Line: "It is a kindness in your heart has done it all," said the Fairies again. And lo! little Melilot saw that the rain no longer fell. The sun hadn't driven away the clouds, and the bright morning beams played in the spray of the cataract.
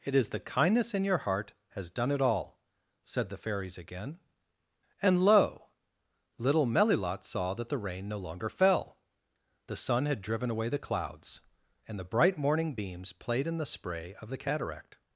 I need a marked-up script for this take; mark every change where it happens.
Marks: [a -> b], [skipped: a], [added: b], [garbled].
"It is [a -> the] kindness in your heart has done it all," said the Fairies again. And lo! little Melilot saw that the rain no longer fell. The sun [hadn't -> had] driven away the clouds, and the bright morning beams played in the spray of the cataract.